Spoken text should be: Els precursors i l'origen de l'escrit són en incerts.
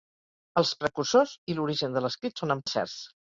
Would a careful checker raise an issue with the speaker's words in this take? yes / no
no